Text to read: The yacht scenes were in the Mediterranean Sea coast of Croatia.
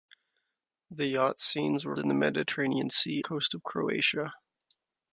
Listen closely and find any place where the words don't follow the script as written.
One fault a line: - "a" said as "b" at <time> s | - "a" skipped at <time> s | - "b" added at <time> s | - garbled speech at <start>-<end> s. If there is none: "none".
none